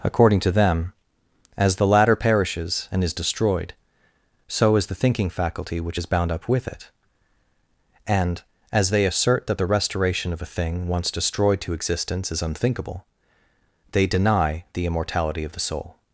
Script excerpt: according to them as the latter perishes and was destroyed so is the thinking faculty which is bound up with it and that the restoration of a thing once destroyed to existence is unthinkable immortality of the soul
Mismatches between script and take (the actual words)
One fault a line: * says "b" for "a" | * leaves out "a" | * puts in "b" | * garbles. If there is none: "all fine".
* says "is" for "was"
* puts in "as they assert"
* puts in "they deny the"